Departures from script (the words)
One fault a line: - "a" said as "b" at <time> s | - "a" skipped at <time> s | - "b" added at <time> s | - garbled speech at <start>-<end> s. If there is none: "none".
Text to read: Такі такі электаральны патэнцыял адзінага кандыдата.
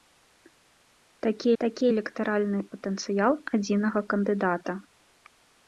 none